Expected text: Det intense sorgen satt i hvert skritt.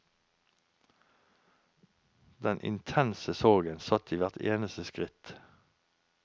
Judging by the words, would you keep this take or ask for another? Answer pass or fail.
fail